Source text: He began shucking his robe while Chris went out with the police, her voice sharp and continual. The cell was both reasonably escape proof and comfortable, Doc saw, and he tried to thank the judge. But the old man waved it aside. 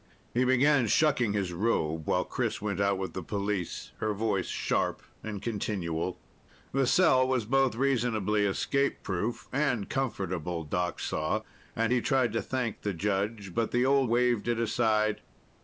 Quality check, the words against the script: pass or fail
fail